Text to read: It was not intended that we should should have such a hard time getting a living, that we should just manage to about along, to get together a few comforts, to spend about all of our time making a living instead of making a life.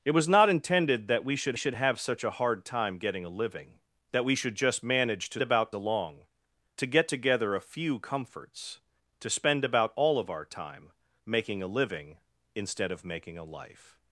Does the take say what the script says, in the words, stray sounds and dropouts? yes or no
yes